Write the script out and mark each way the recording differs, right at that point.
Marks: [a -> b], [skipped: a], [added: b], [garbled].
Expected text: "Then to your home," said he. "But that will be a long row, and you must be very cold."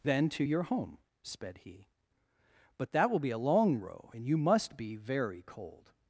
"Then to your home," [said -> sped] he. "But that will be a long row, and you must be very cold."